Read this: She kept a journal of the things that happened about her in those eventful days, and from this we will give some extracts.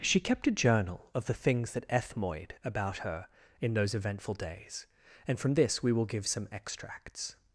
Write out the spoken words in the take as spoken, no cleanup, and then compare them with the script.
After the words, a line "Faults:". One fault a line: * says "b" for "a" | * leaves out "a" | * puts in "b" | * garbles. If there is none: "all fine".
She kept a journal of the things that ethmoid about her in those eventful days, and from this we will give some extracts.
Faults:
* says "ethmoid" for "happened"